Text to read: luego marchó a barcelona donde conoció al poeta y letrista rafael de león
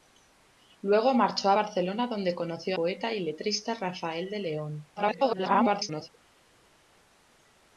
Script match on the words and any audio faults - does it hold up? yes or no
no